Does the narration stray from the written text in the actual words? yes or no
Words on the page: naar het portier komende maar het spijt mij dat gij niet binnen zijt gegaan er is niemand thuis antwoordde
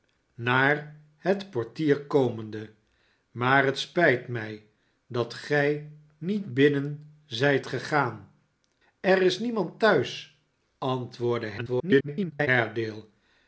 yes